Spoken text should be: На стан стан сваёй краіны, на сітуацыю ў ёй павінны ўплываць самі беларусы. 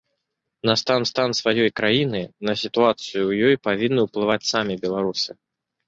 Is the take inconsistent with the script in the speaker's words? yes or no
no